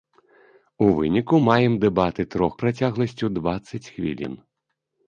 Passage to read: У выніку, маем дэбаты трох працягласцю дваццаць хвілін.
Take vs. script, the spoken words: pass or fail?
pass